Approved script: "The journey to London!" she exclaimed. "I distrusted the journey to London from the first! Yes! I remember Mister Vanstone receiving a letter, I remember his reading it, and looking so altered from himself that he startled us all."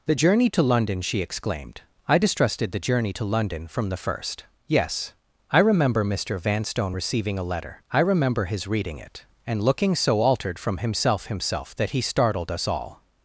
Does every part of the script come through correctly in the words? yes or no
no